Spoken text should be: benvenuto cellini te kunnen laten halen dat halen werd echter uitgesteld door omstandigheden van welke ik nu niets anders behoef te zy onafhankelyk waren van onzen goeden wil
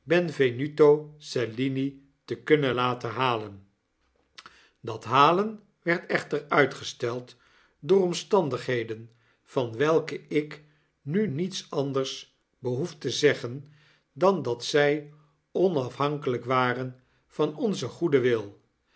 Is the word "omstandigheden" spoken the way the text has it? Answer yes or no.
yes